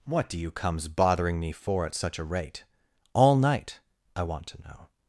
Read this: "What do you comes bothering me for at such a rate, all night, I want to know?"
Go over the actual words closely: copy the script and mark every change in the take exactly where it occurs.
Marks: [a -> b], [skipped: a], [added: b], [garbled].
"What do you comes bothering me for at such a rate, all night, I want to know?"